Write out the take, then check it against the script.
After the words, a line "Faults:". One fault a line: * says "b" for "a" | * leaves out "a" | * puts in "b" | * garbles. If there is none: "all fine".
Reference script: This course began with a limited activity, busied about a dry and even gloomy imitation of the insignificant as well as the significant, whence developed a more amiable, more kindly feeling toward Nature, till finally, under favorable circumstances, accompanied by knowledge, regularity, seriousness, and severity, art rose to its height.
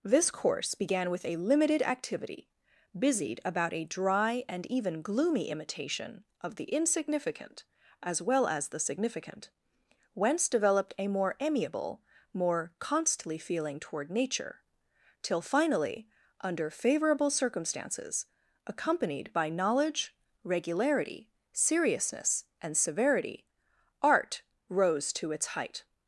This course began with a limited activity, busied about a dry and even gloomy imitation of the insignificant as well as the significant, whence developed a more amiable, more constantly feeling toward Nature, till finally, under favorable circumstances, accompanied by knowledge, regularity, seriousness, and severity, art rose to its height.
Faults:
* says "constantly" for "kindly"